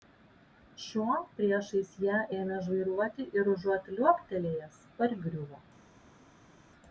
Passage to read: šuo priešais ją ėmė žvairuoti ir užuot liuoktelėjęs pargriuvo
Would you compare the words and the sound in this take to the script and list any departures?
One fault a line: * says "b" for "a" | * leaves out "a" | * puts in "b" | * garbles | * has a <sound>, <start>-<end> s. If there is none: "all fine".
all fine